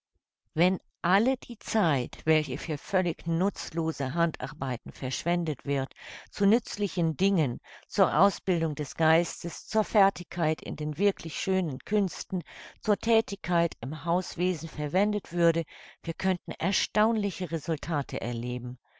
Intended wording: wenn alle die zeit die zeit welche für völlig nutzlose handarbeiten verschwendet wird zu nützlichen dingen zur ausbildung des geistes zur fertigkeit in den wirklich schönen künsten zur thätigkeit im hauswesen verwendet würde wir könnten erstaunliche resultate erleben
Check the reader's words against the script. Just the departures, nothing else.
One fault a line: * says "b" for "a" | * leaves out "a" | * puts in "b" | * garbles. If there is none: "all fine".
* leaves out "die zeit"